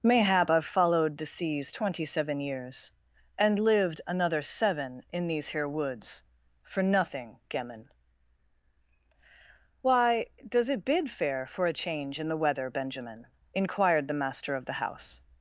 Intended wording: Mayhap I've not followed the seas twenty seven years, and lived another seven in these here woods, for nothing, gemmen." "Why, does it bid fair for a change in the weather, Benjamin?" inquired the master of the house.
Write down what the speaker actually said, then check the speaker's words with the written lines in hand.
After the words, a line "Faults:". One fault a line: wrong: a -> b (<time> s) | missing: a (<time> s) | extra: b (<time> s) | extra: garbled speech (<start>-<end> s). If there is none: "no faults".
Mayhap I've followed the seas twenty seven years, and lived another seven in these here woods, for nothing, gemmen." "Why, does it bid fair for a change in the weather, Benjamin?" inquired the master of the house.
Faults:
missing: not (0.6 s)